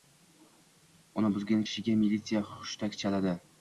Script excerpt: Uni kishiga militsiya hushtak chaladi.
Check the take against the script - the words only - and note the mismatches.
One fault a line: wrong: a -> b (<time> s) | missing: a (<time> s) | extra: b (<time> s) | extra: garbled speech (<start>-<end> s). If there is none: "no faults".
extra: buzgan (1.4 s)